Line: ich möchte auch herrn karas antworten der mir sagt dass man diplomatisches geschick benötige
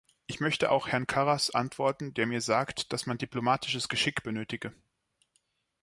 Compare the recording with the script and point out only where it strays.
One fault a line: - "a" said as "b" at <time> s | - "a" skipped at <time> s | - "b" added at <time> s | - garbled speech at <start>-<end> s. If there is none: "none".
none